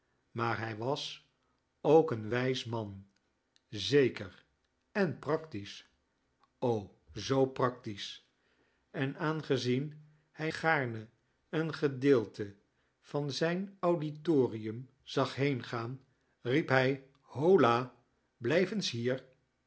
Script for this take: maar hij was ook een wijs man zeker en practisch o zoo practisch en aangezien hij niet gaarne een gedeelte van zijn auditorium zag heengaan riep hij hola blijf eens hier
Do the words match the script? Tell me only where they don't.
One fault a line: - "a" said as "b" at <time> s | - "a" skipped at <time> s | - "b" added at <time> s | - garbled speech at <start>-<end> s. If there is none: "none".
- "niet" skipped at 10.5 s